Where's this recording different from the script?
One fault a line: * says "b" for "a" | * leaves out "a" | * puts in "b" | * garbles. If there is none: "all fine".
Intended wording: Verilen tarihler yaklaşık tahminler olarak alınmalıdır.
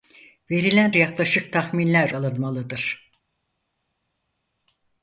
* leaves out "tarihler"
* leaves out "olarak"